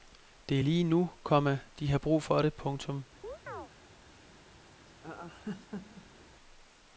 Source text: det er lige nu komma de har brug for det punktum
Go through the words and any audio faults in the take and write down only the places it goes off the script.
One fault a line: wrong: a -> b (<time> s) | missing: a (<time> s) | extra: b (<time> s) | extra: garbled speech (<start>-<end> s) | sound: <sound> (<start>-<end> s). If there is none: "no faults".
sound: chirp (3.2-3.7 s)
sound: laugh (4.9-6.3 s)